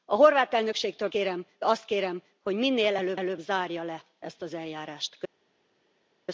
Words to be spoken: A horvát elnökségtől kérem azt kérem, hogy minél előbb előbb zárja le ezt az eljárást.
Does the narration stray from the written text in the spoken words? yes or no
no